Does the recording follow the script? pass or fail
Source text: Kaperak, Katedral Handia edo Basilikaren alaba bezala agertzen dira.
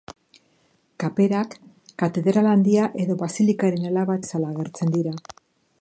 pass